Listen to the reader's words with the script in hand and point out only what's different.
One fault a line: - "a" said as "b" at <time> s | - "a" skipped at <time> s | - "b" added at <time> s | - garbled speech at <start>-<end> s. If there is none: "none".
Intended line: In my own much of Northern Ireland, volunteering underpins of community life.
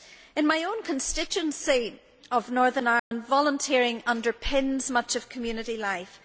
- "much" said as "constituency" at 0.8 s
- "much" added at 4.9 s